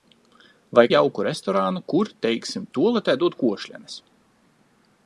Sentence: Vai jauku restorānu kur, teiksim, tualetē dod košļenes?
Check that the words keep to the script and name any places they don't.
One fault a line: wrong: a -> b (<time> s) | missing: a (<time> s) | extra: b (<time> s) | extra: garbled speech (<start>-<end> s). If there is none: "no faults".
no faults